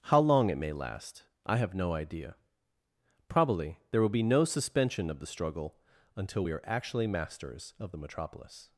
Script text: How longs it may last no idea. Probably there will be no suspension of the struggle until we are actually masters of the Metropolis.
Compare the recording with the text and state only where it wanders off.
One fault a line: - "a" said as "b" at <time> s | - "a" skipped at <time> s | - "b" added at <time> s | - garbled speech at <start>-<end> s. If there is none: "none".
- "longs" said as "long" at 0.2 s
- "I have" added at 1.4 s